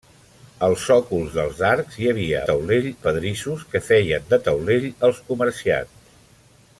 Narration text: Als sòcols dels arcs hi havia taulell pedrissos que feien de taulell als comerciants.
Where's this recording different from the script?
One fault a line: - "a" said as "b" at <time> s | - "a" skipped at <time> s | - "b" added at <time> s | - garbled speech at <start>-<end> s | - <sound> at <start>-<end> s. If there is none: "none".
none